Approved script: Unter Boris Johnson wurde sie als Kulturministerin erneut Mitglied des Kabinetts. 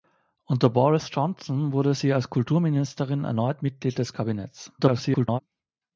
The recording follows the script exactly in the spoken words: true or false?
false